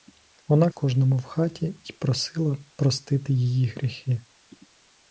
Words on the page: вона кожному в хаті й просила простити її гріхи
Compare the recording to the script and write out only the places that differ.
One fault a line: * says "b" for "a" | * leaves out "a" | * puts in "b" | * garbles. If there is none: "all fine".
all fine